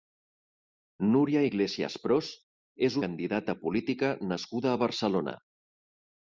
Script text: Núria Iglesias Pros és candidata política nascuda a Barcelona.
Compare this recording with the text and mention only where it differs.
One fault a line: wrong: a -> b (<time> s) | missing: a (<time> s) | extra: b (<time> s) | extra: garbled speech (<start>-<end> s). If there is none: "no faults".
no faults